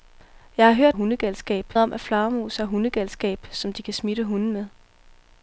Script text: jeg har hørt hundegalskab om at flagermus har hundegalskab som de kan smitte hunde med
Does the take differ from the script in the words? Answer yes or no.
no